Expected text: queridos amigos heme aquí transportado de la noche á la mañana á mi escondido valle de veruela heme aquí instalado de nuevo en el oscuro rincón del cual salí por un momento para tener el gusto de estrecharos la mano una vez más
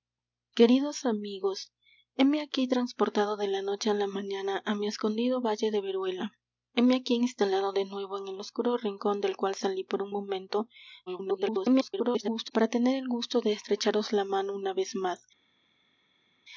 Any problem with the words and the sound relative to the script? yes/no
yes